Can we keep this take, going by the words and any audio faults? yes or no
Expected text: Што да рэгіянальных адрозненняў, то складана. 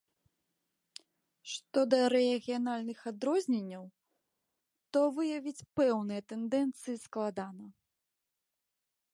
no